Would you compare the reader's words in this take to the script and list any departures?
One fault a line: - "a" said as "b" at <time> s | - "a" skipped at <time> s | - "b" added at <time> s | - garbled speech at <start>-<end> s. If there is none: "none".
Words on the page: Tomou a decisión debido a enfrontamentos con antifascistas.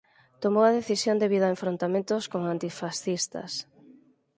none